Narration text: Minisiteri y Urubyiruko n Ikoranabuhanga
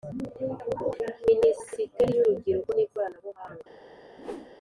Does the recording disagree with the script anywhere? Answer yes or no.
no